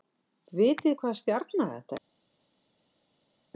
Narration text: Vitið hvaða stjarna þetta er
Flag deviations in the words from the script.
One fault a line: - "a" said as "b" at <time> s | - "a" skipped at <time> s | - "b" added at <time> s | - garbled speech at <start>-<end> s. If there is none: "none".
none